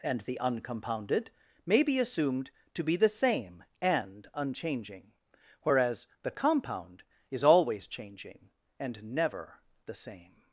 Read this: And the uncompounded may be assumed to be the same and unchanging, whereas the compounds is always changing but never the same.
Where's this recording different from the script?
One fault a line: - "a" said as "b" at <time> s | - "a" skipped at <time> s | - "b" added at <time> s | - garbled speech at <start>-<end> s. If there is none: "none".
- "compounds" said as "compound" at 6.3 s
- "but" said as "and" at 8.8 s